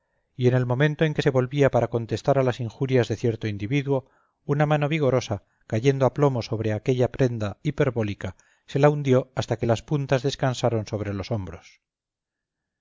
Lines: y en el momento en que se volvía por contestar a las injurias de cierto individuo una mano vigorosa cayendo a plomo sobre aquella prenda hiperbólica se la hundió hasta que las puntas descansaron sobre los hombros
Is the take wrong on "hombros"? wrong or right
right